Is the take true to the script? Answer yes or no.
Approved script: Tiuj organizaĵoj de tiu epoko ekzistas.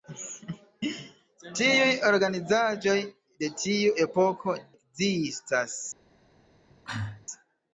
yes